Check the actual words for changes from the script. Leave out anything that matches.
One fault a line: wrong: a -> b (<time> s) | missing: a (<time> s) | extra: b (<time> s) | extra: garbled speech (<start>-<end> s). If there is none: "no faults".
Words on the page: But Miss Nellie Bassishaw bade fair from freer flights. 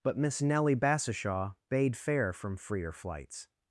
no faults